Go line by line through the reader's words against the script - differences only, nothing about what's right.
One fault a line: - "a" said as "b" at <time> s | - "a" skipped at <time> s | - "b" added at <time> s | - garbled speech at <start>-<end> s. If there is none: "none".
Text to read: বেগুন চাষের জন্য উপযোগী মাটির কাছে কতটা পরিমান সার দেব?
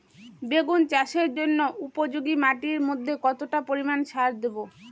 - "কাছে" said as "মধ্যে" at 2.9 s